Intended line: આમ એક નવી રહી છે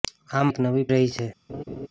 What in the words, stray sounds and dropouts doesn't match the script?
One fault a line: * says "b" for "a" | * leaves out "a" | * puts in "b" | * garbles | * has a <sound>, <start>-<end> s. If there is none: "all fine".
* has a laugh, 1.5-1.9 s